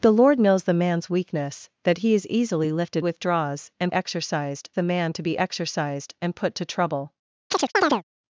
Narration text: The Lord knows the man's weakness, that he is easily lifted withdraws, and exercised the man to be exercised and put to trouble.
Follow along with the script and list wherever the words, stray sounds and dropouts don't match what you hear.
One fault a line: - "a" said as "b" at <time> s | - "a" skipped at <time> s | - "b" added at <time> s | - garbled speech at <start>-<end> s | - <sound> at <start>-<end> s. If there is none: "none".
- chirp at 7.5-8.0 s